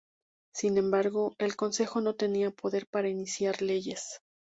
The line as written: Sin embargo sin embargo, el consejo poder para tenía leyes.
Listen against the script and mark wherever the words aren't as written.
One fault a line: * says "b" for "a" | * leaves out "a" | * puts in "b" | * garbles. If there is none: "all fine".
* says "el consejo no tenía" for "sin embargo el consejo"
* says "iniciar" for "tenía"